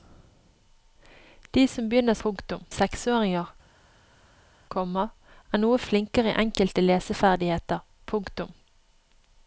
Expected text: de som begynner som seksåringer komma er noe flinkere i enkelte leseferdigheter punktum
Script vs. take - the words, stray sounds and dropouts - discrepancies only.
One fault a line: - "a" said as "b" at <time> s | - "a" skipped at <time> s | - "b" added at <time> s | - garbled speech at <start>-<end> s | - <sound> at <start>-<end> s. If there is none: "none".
- "som" said as "punktum" at 2.3 s